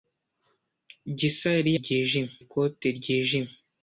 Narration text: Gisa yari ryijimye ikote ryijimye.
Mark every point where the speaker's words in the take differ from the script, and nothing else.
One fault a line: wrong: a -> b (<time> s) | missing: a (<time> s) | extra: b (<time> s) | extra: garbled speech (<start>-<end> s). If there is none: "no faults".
no faults